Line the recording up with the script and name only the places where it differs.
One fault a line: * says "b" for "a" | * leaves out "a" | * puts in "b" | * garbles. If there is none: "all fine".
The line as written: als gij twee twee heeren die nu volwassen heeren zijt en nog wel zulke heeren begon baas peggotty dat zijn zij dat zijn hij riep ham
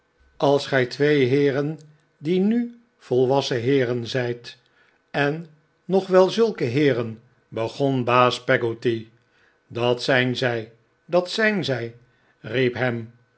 * leaves out "twee"
* says "zij" for "hij"